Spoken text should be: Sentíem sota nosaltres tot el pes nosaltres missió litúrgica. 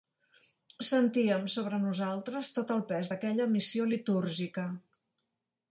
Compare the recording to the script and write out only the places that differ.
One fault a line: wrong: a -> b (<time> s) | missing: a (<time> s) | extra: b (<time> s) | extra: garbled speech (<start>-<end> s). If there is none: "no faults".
wrong: sota -> sobre (1.6 s)
wrong: nosaltres -> d'aquella (3.1 s)